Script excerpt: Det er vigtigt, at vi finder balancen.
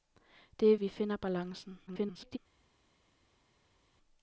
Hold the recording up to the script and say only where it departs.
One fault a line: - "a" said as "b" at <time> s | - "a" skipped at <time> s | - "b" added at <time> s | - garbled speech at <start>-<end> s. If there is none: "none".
- "vigtigt at" skipped at 0.8 s
- garbled speech at 1.9-2.4 s